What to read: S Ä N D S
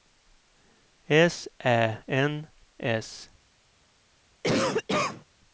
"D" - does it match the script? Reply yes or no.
no